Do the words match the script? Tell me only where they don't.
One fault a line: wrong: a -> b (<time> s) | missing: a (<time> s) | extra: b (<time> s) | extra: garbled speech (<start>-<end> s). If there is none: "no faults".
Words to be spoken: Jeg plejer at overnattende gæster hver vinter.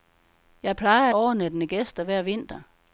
no faults